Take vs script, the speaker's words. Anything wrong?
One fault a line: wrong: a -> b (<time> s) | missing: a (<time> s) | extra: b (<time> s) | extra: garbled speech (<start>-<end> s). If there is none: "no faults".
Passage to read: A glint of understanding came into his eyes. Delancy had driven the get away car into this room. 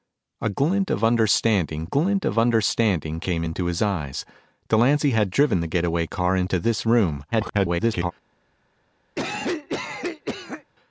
extra: glint of understanding (1.8 s)
extra: garbled speech (7.3-8.1 s)